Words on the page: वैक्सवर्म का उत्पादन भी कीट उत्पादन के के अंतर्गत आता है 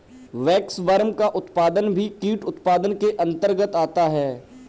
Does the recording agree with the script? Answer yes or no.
no